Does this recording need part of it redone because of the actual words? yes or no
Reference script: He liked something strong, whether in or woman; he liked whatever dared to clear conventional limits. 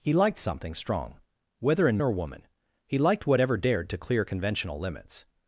no